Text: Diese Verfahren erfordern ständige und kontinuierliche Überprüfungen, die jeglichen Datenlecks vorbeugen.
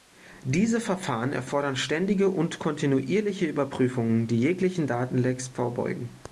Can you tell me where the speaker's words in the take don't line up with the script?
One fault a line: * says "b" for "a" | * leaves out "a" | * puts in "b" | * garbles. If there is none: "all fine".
all fine